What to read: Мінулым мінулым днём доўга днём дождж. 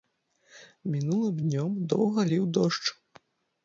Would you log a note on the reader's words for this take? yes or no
yes